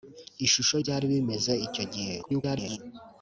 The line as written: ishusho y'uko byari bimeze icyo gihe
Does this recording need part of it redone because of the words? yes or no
yes